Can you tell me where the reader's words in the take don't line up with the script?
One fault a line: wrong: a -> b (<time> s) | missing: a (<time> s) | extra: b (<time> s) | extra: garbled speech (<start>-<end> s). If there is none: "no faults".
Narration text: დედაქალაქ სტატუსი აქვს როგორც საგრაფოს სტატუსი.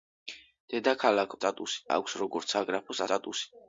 no faults